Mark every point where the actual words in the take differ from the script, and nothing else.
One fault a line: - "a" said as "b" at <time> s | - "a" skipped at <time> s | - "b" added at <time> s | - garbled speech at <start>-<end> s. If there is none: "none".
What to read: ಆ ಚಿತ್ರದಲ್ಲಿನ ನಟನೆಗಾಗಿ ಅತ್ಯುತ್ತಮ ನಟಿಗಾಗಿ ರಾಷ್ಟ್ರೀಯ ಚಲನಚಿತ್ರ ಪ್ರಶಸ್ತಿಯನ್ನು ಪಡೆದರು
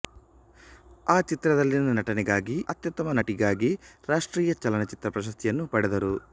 none